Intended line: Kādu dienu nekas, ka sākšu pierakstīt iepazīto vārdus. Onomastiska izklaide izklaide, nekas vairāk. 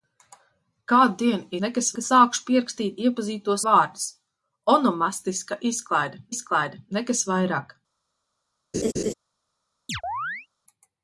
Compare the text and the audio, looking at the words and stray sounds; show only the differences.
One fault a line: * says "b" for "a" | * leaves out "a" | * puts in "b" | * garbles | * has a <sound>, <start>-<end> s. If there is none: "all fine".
* has a laugh, 8.7-9.1 s
* has a chirp, 9.9-10.5 s